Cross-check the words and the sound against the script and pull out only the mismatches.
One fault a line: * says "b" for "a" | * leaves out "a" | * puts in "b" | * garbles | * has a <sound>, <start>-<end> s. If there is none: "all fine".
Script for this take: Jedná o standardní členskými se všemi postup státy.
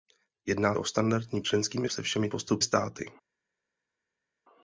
all fine